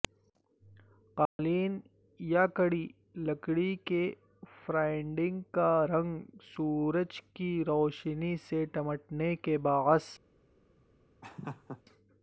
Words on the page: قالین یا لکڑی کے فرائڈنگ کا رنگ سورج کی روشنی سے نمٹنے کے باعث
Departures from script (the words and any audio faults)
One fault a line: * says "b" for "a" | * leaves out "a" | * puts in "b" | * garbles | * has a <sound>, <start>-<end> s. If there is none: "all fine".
* has a dropout, 1.3-1.4 s
* puts in "کڑی"
* has a laugh, 11.2-11.8 s